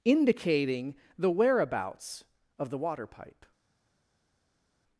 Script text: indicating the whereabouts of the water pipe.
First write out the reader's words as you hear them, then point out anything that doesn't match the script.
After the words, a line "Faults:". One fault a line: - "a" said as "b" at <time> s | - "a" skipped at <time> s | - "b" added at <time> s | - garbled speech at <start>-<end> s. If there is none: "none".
indicating the whereabouts of the water pipe.
Faults:
none